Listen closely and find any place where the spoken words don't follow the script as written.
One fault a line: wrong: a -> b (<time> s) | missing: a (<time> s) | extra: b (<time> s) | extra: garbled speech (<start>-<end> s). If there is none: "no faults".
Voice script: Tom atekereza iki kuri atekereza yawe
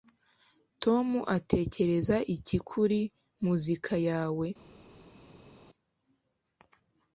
wrong: atekereza -> muzika (3.4 s)